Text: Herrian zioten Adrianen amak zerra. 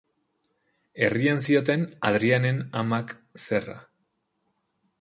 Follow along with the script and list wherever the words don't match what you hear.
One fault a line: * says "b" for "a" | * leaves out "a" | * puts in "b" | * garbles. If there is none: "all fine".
all fine